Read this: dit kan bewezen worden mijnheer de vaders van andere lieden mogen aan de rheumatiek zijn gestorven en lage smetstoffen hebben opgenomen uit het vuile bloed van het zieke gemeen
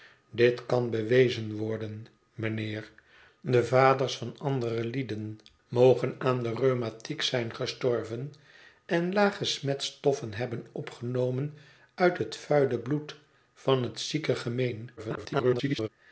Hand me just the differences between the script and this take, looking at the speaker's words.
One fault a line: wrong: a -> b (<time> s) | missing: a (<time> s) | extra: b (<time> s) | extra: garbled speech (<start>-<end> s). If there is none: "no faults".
extra: garbled speech (15.0-15.9 s)